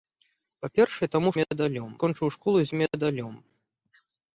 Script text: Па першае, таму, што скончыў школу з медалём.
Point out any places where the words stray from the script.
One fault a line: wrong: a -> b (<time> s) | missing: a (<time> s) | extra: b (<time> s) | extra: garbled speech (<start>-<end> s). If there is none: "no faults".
wrong: што -> медалём (1.4 s)